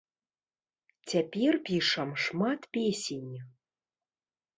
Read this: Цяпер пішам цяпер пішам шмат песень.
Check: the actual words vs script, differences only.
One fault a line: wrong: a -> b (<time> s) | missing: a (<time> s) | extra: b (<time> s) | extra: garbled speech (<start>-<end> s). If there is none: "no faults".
missing: цяпер пішам (2.1 s)